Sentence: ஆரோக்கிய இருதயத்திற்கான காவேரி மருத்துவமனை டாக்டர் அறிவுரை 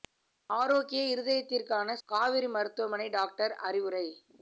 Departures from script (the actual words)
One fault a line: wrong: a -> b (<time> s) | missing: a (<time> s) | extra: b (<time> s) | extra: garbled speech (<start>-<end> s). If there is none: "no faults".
no faults